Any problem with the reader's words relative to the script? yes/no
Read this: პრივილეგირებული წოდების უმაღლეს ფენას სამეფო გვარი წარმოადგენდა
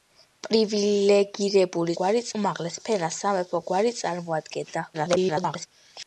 yes